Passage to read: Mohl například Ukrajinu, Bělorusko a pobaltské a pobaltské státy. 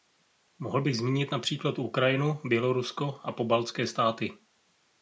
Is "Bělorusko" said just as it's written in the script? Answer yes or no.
yes